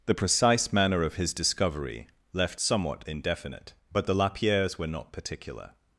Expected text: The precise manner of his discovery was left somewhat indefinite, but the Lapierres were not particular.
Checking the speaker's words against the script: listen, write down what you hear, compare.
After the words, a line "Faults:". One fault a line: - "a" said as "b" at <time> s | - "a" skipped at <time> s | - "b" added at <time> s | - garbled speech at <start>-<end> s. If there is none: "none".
The precise manner of his discovery left somewhat indefinite, but the Lapierres were not particular.
Faults:
- "was" skipped at 2.1 s